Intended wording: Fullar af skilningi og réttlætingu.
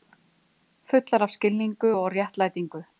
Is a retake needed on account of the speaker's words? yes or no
no